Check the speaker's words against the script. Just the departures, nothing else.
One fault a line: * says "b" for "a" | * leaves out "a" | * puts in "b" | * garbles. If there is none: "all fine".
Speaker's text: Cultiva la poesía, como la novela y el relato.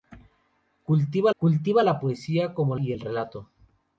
* puts in "cultiva"
* leaves out "la novela"